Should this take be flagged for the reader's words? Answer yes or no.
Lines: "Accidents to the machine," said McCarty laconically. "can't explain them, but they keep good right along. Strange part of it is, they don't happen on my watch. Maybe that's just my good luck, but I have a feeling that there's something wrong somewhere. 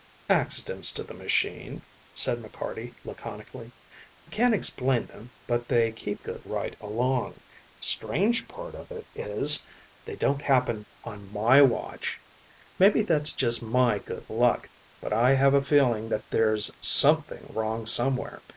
no